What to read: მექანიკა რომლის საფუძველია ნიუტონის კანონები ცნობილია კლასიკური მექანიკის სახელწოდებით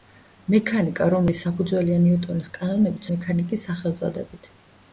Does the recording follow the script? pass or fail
fail